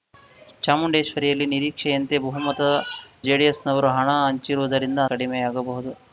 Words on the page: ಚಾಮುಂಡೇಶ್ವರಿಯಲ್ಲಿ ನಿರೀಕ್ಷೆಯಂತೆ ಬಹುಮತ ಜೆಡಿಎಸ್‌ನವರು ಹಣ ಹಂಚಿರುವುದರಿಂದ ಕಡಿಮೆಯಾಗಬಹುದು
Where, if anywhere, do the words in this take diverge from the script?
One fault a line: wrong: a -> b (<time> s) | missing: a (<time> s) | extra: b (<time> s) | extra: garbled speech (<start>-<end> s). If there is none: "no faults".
no faults